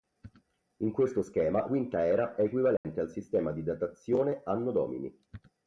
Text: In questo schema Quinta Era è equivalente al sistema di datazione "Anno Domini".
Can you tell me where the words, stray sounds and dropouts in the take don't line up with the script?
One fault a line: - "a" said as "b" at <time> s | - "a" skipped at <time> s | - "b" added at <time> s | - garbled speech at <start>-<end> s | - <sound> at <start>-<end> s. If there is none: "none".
- dropout at 2.8-2.8 s